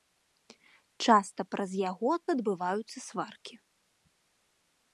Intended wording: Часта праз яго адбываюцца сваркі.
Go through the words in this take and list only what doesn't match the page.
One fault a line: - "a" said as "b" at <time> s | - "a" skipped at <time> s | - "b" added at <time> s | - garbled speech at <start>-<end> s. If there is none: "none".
none